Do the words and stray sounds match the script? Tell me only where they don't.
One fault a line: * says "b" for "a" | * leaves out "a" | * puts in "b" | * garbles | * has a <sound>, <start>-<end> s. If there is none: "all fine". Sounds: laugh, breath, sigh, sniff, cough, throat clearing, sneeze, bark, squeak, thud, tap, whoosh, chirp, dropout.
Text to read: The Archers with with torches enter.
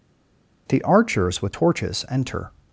* leaves out "with"